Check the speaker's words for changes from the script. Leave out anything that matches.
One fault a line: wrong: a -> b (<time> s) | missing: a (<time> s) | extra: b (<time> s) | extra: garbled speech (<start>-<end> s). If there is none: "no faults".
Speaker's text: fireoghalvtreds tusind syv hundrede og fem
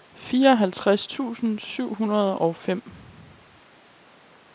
no faults